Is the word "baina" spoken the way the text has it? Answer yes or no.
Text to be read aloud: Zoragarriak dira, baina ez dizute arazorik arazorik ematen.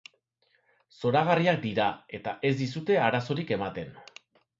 no